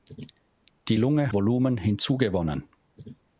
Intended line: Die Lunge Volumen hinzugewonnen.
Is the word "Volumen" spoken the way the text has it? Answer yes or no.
yes